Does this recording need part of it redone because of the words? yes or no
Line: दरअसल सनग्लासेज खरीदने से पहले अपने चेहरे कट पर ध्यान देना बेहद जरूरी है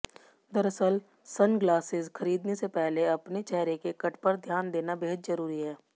yes